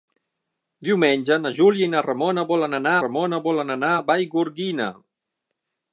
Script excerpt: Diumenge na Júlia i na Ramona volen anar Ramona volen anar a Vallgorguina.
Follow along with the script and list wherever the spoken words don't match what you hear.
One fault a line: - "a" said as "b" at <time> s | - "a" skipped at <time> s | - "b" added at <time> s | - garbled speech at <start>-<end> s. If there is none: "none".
none